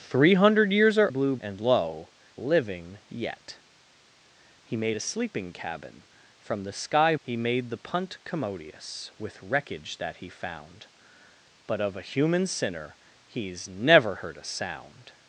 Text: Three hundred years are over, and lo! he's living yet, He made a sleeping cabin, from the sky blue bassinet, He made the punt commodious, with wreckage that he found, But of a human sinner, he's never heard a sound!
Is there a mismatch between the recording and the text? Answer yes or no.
yes